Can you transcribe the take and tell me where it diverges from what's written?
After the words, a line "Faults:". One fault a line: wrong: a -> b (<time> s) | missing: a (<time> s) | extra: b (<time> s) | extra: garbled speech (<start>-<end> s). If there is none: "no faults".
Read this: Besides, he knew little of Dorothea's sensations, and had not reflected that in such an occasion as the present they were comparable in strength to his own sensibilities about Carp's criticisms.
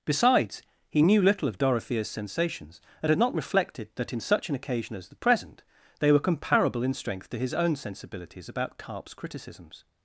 Besides, he knew little of Dorothea's sensations, and had not reflected that in such an occasion as the present they were comparable in strength to his own sensibilities about Carp's criticisms.
Faults:
no faults